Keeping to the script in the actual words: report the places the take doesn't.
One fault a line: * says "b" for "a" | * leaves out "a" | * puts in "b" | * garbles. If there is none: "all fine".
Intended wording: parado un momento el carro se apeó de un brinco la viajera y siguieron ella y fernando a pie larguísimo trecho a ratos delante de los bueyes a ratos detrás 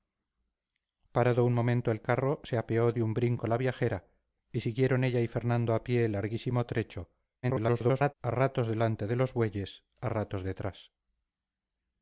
* garbles